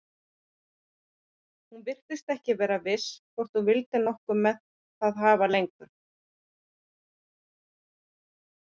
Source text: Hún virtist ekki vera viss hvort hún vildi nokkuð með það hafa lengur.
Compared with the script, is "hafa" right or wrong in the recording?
right